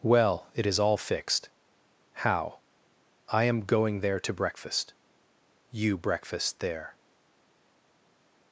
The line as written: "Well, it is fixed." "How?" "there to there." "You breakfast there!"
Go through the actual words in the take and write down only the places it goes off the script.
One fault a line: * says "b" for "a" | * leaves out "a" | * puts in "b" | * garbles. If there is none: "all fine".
* puts in "all"
* puts in "I am going"
* says "breakfast" for "there"